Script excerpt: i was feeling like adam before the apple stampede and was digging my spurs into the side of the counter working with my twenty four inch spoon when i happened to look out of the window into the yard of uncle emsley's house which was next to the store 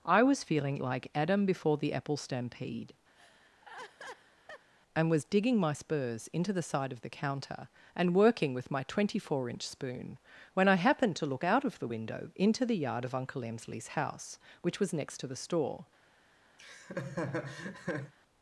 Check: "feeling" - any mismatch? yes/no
no